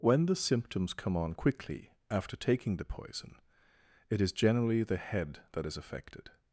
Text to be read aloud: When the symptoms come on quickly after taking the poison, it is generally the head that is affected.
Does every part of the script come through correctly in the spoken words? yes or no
yes